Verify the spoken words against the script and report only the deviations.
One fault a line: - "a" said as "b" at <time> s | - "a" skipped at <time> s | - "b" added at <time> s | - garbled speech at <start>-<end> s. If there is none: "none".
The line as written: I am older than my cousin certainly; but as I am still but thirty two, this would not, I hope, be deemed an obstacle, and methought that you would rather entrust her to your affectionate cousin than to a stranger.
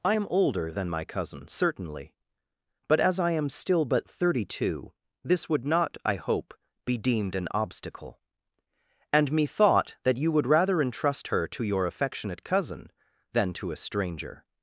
none